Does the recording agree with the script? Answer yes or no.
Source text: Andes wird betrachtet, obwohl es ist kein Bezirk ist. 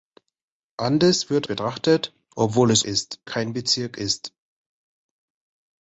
yes